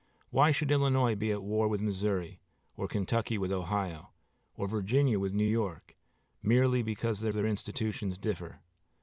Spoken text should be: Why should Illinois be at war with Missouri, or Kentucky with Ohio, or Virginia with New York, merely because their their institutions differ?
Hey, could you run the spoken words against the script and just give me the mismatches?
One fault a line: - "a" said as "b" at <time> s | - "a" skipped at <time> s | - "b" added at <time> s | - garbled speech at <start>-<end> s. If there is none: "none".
none